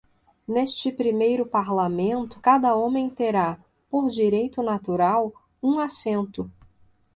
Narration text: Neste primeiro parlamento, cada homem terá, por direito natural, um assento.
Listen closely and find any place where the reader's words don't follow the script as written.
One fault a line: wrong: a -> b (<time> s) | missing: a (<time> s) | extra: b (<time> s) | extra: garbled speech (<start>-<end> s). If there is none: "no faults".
no faults